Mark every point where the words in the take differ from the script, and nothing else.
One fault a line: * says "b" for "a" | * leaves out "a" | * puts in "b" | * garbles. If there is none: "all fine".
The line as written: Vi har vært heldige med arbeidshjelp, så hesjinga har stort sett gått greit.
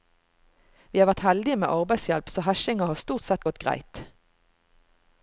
all fine